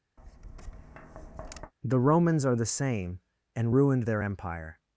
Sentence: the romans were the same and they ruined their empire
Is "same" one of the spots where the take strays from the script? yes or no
no